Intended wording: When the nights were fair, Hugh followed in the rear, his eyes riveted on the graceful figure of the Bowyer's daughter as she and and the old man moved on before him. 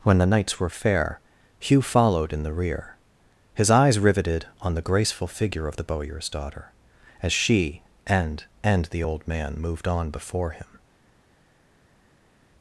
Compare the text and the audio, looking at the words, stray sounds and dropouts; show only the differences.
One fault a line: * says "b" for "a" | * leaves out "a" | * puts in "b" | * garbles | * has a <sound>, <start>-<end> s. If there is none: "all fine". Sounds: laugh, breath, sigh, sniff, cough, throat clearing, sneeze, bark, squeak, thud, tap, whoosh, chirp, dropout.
all fine